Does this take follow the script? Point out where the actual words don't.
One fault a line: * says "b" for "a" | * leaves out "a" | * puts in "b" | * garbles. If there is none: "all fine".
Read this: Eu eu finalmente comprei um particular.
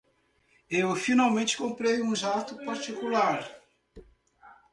* leaves out "eu"
* puts in "jato"